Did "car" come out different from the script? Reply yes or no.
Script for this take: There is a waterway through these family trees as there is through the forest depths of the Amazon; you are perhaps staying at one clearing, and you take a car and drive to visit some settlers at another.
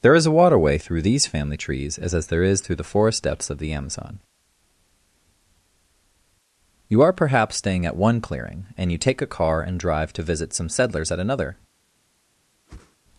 no